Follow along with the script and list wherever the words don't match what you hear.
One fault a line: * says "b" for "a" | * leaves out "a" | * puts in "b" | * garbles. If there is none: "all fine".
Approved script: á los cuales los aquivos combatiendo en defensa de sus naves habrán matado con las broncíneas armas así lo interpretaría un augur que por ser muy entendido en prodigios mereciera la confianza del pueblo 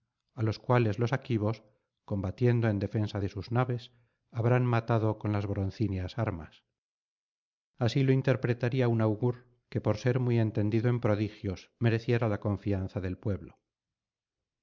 all fine